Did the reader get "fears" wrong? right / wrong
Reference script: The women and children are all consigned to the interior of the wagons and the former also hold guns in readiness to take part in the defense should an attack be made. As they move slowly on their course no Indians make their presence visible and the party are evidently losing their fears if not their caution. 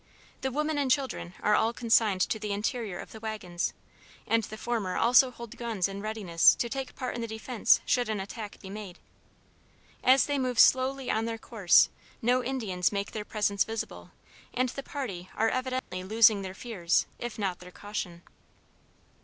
right